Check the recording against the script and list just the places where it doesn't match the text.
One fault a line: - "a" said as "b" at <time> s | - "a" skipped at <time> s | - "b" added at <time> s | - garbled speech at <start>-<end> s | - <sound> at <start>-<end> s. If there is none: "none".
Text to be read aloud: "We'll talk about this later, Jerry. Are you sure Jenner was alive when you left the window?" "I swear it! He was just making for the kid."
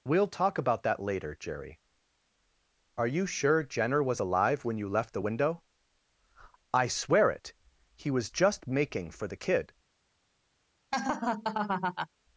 - "this" said as "that" at 0.8 s
- laugh at 10.9-12.1 s